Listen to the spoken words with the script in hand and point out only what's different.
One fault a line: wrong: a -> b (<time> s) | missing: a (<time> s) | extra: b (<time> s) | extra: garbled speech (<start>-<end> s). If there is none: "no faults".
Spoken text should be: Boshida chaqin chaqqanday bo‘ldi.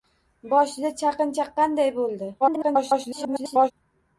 extra: garbled speech (2.4-3.7 s)